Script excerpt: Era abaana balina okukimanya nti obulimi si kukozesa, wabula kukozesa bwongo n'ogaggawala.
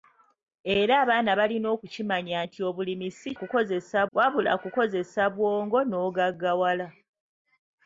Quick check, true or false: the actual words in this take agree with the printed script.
true